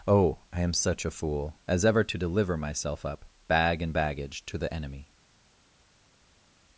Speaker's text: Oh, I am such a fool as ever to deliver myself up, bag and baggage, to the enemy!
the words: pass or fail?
pass